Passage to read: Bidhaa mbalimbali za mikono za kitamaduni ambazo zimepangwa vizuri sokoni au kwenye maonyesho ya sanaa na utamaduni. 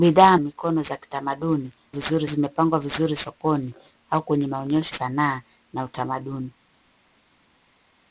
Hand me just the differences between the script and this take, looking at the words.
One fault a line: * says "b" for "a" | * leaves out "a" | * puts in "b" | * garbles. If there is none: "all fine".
* leaves out "mbalimbali za"
* says "vizuri" for "ambazo"
* leaves out "ya"